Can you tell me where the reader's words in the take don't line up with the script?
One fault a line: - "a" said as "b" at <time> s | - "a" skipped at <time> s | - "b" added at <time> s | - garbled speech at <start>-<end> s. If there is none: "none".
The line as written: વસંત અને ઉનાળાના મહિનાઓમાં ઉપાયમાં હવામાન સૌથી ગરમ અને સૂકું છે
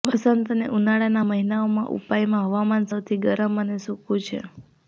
none